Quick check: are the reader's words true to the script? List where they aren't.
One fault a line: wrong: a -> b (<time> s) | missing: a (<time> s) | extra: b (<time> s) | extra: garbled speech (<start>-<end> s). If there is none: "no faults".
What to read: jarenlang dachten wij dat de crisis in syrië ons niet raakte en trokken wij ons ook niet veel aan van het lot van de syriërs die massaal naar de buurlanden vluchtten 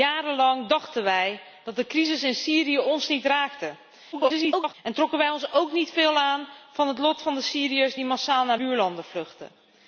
extra: garbled speech (4.1-4.7 s)
missing: de (8.6 s)